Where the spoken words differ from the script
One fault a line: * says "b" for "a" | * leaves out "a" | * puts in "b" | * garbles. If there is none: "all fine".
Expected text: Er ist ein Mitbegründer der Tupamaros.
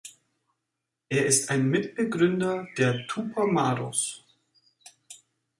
all fine